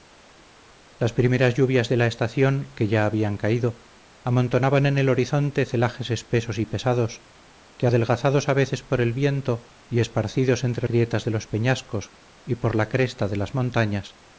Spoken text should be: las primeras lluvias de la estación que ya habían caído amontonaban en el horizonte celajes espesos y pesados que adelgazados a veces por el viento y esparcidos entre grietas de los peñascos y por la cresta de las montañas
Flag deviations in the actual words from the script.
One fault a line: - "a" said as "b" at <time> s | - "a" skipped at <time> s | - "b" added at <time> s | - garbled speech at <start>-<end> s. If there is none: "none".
none